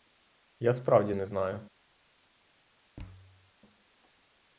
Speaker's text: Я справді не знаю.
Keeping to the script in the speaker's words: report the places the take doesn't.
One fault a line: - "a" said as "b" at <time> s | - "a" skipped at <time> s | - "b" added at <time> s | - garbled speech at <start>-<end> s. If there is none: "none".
none